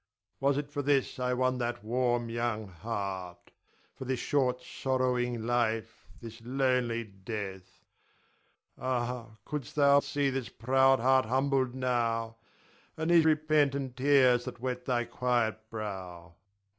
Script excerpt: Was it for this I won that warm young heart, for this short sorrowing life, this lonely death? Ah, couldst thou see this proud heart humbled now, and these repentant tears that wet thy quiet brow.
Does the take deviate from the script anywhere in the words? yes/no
no